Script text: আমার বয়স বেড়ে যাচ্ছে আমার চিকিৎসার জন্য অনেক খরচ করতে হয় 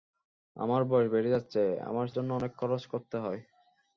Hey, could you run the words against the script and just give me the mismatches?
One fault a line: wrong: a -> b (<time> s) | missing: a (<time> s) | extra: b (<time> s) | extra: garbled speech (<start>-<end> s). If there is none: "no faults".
missing: চিকিৎসার (2.1 s)